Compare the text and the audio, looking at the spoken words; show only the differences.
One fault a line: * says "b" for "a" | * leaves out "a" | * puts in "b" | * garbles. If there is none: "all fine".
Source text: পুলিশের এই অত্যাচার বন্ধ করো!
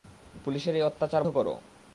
* leaves out "বন্ধ"